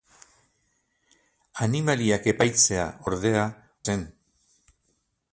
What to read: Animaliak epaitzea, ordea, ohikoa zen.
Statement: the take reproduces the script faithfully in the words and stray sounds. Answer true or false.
false